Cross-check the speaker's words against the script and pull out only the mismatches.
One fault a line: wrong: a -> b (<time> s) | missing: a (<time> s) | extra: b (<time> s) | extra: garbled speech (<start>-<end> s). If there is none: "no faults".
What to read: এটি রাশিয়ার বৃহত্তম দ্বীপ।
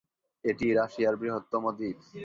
no faults